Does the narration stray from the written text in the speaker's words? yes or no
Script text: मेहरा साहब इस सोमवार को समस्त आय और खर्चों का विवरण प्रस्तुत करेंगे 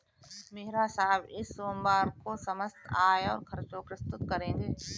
yes